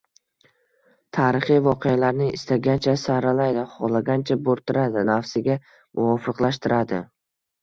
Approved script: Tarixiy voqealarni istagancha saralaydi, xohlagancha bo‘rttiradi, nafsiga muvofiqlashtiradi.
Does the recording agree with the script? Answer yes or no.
yes